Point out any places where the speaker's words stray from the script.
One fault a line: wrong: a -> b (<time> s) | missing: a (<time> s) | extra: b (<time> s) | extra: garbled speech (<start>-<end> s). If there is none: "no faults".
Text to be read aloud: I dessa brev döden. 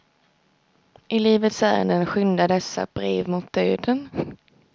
extra: livets ärenden skyndar (1.2 s)
extra: mot (3.3 s)